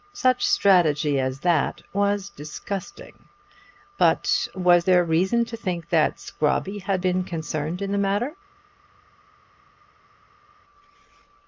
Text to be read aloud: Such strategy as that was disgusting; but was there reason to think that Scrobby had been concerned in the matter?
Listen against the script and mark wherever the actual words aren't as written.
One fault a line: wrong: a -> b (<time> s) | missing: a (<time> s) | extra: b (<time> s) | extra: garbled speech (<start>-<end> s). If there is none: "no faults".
no faults